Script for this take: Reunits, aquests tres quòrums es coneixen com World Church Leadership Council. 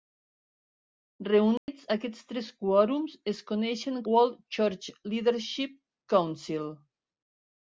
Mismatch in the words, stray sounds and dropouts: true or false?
true